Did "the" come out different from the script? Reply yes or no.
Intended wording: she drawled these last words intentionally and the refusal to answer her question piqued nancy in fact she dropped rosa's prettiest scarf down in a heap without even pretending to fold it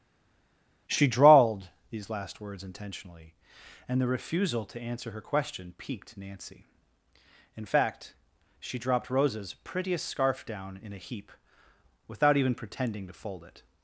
no